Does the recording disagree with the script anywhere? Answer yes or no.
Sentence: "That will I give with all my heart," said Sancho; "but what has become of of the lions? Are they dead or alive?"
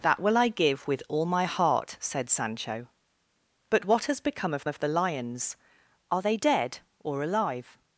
no